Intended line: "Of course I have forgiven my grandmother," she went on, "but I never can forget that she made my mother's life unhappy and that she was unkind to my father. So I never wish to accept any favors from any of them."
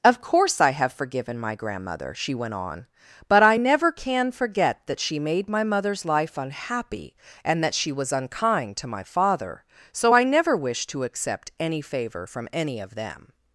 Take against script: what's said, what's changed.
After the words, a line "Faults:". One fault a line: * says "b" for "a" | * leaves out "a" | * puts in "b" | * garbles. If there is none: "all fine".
"Of course I have forgiven my grandmother," she went on, "but I never can forget that she made my mother's life unhappy and that she was unkind to my father. So I never wish to accept any favor from any of them."
Faults:
* says "favor" for "favors"